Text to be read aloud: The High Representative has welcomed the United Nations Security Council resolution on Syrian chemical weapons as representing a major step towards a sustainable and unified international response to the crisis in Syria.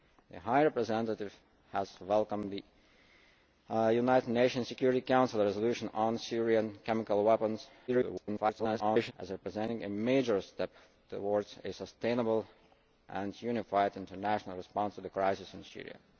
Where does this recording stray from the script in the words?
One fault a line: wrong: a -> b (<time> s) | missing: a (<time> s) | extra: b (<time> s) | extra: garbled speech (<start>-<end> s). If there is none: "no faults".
extra: garbled speech (7.9-9.1 s)